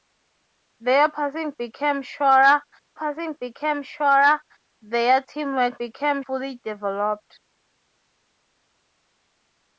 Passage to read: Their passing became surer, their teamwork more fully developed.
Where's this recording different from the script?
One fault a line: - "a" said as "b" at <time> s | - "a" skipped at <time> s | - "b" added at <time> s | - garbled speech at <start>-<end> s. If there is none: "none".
- "passing became surer" added at 2.9 s
- "more" said as "became" at 5.8 s